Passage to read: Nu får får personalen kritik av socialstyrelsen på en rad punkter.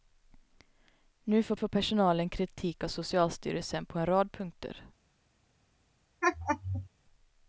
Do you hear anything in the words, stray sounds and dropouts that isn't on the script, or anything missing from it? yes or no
yes